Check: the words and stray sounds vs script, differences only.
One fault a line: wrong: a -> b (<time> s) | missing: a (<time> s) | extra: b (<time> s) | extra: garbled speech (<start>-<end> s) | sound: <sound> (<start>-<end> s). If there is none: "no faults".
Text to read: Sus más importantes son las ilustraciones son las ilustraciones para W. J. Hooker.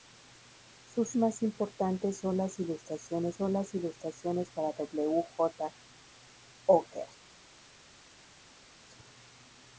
no faults